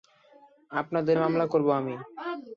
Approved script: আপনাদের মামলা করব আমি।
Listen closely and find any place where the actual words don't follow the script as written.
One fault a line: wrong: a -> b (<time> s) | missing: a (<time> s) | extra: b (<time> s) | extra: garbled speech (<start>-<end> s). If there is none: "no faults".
no faults